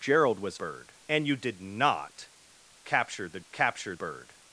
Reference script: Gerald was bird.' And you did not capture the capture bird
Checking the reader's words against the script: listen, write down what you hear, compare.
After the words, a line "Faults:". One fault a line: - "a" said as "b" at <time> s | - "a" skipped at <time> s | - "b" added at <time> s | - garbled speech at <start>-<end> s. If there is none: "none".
Gerald was bird.' And you did not capture the capture bird
Faults:
none